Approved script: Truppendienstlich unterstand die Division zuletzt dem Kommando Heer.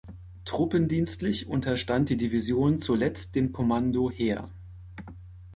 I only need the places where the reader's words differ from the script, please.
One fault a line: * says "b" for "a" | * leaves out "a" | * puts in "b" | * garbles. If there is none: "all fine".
all fine